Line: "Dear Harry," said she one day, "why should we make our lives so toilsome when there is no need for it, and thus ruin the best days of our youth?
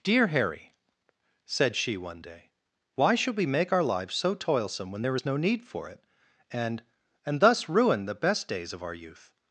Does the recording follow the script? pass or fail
fail